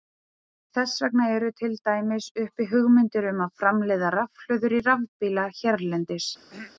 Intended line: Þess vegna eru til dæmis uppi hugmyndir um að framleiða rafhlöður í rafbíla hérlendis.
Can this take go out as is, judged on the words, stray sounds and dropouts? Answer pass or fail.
fail